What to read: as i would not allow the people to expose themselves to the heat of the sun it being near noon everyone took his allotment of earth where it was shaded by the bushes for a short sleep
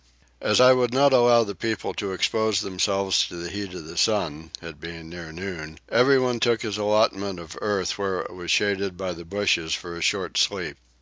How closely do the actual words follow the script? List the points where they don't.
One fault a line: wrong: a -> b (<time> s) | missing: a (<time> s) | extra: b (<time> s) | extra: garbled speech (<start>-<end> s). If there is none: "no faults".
no faults